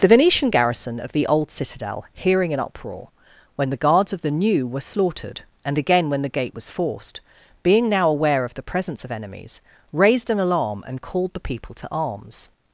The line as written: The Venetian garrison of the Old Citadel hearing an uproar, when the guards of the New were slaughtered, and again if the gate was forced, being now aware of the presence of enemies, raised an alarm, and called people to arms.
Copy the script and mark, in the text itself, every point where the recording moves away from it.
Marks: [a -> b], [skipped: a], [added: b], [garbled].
The Venetian garrison of the Old Citadel hearing an uproar, when the guards of the New were slaughtered, and again [if -> when] the gate was forced, being now aware of the presence of enemies, raised an alarm, and called [added: the] people to arms.